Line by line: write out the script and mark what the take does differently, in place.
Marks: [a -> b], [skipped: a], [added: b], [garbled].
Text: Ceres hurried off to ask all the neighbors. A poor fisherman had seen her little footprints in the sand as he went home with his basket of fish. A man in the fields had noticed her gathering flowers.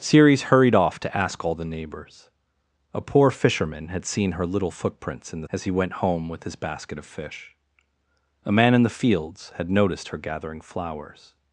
Ceres hurried off to ask all the neighbors. A poor fisherman had seen her little footprints in the [skipped: sand] as he went home with his basket of fish. A man in the fields had noticed her gathering flowers.